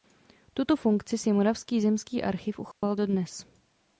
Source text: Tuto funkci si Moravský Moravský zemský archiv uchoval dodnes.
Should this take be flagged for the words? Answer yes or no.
yes